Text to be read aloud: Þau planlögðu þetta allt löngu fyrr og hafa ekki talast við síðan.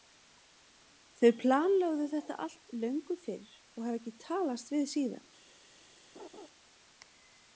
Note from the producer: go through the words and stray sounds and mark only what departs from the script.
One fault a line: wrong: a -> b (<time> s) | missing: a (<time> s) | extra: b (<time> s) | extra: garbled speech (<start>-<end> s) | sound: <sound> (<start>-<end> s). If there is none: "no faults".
sound: laugh (6.1-6.5 s)